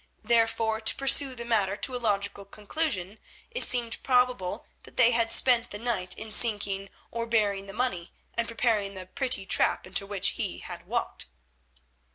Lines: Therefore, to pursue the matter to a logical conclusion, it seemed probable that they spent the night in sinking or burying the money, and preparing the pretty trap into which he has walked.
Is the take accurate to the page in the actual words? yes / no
no